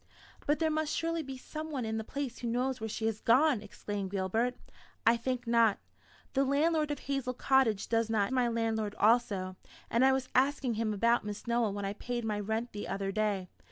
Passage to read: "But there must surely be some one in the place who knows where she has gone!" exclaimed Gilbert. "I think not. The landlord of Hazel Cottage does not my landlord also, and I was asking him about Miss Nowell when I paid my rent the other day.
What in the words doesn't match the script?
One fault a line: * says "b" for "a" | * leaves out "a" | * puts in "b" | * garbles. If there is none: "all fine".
all fine